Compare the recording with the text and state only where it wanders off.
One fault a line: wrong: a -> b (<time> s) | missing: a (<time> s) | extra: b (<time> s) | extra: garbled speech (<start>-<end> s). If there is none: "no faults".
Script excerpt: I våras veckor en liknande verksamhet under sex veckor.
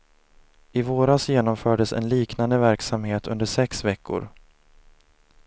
wrong: veckor -> genomfördes (1.3 s)